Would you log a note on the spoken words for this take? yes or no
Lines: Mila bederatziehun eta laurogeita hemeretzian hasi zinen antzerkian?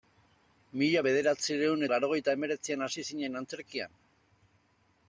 yes